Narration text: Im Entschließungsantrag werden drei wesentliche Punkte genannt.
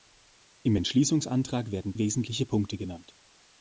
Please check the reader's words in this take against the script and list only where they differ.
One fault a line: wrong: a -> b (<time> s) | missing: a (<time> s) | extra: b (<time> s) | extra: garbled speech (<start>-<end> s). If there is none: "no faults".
missing: drei (1.9 s)